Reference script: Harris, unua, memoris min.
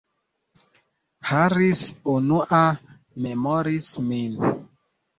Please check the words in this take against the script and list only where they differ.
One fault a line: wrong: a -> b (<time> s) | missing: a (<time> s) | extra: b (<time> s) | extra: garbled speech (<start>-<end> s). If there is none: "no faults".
no faults